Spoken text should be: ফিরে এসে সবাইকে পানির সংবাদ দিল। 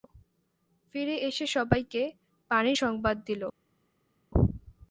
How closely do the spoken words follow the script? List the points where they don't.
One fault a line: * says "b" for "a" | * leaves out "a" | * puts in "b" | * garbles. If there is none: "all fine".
all fine